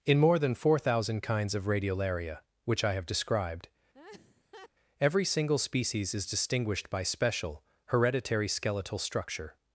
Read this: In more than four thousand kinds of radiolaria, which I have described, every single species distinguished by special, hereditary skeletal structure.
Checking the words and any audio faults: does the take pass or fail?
fail